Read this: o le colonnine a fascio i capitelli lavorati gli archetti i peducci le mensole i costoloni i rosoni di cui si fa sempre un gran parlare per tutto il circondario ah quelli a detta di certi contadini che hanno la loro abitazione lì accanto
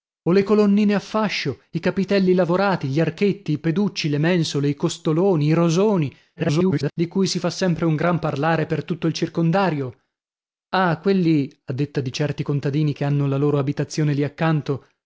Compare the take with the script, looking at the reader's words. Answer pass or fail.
fail